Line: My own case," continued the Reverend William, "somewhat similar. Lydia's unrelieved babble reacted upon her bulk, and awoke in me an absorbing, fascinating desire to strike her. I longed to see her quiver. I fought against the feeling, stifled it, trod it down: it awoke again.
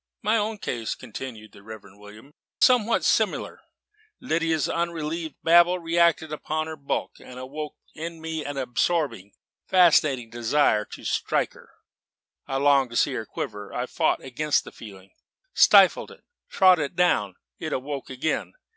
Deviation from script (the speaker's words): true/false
false